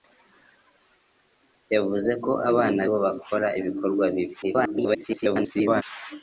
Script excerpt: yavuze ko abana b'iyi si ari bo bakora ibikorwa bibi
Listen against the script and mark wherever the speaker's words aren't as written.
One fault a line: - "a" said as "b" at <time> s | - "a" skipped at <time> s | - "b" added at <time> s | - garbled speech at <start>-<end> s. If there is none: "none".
- "b'iyi si ari" skipped at 2.8 s
- garbled speech at 4.4-5.8 s